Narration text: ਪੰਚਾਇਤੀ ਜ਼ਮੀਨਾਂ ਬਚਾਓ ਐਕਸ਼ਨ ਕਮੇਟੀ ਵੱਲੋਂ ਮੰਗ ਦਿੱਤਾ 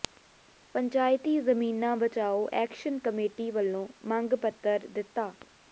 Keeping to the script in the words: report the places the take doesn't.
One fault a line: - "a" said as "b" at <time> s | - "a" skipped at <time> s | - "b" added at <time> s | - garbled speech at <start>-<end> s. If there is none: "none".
- "ਪੱਤਰ" added at 4.4 s